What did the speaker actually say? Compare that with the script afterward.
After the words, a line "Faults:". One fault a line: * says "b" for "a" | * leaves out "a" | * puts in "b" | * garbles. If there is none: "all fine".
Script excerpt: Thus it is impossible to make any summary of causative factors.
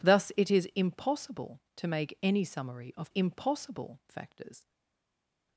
Thus it is impossible to make any summary of impossible factors.
Faults:
* says "impossible" for "causative"